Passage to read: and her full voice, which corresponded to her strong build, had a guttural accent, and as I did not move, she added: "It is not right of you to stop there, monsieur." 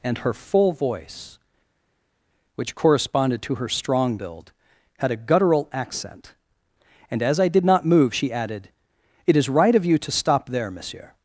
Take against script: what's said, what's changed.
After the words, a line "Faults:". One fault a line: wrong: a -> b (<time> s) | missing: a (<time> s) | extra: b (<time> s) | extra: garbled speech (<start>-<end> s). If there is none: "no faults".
and her full voice, which corresponded to her strong build, had a guttural accent, and as I did not move, she added: "It is right of you to stop there, monsieur."
Faults:
missing: not (9.5 s)